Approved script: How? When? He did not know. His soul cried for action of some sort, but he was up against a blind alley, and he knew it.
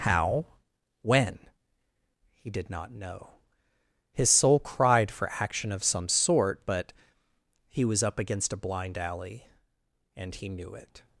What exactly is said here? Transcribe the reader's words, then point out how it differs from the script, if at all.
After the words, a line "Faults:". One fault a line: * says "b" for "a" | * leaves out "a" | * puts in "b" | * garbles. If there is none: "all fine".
How? When? He did not know. His soul cried for action of some sort, but he was up against a blind alley, and he knew it.
Faults:
all fine